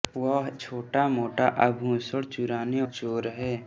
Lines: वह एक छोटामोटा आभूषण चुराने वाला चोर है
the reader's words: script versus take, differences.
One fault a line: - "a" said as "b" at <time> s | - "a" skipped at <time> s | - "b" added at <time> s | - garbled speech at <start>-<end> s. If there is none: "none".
- "एक" skipped at 0.5 s
- "वाला" skipped at 2.8 s